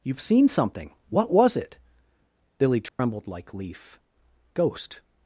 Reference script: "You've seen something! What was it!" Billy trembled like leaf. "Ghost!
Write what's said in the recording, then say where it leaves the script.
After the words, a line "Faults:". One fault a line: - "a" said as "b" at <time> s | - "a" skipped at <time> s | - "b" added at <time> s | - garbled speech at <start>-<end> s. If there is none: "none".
"You've seen something! What was it!" Billy trembled like leaf. "Ghost!
Faults:
none